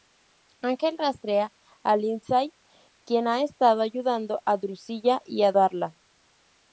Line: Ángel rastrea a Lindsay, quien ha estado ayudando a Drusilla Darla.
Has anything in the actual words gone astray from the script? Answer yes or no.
yes